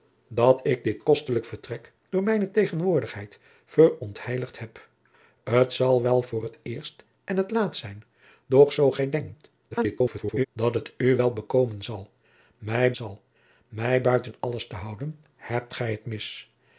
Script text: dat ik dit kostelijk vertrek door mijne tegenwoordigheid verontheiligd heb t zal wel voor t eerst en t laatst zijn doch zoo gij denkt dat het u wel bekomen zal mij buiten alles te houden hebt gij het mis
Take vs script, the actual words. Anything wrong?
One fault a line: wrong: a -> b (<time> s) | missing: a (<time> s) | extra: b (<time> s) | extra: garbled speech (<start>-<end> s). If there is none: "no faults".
extra: garbled speech (9.7-10.5 s)
extra: zal mij (12.9 s)